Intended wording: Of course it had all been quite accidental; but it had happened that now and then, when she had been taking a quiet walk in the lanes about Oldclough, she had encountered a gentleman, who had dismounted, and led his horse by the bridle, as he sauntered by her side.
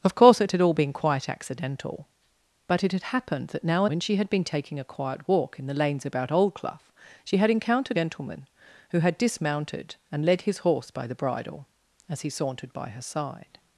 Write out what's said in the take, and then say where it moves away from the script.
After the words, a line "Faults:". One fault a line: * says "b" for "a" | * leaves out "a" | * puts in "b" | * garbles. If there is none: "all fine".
Of course it had all been quite accidental; but it had happened that now when she had been taking a quiet walk in the lanes about Oldclough, she had encountered gentleman, who had dismounted, and led his horse by the bridle, as he sauntered by her side.
Faults:
* leaves out "and then"
* leaves out "a"